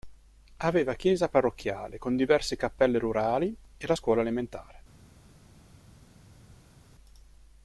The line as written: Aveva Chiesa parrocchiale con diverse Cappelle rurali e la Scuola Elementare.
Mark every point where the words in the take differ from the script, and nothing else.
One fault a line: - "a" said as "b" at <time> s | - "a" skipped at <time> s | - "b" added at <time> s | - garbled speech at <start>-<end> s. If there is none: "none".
none